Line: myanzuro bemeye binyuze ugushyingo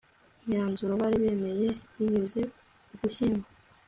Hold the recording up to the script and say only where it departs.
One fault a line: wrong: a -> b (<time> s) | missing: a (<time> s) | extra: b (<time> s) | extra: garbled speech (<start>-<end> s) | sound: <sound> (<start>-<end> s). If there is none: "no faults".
extra: bari (1.0 s)